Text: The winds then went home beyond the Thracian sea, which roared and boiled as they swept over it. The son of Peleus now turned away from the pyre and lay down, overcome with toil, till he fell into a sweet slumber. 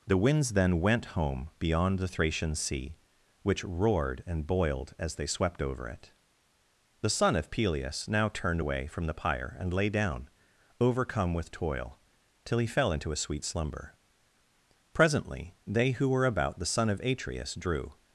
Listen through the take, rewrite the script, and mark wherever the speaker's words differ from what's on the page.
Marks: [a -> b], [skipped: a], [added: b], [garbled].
The winds then went home beyond the Thracian sea, which roared and boiled as they swept over it. The son of Peleus now turned away from the pyre and lay down, overcome with toil, till he fell into a sweet slumber. [added: Presently they who were about the son of Atreus drew]